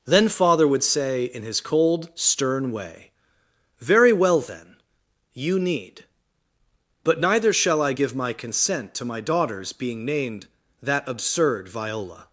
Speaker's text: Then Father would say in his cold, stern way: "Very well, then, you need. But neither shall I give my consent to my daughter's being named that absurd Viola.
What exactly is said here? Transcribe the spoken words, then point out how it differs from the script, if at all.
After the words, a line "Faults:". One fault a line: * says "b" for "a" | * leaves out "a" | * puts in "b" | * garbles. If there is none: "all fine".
Then Father would say in his cold, stern way: "Very well, then, you need. But neither shall I give my consent to my daughter's being named that absurd Viola.
Faults:
all fine